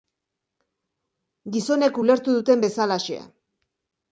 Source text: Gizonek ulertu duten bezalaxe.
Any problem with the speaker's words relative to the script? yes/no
no